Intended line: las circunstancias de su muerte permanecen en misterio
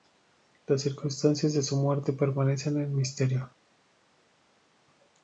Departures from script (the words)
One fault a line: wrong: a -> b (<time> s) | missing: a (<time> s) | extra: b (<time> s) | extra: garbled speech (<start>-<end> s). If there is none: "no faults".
no faults